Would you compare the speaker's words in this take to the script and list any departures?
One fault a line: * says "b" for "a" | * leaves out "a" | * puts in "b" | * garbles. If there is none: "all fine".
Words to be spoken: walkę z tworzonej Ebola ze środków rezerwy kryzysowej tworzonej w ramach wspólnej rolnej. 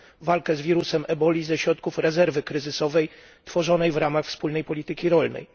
* says "wirusem" for "tworzonej"
* puts in "polityki"